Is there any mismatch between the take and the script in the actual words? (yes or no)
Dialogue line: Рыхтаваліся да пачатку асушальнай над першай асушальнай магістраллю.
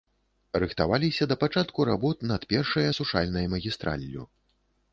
yes